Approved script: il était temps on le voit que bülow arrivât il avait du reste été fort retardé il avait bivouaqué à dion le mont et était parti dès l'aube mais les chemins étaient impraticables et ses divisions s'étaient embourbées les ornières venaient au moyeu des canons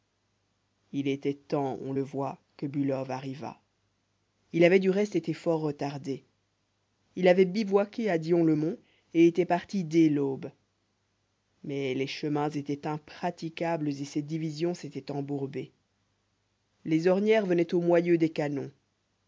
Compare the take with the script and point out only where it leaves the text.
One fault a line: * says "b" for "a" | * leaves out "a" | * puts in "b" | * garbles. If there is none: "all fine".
all fine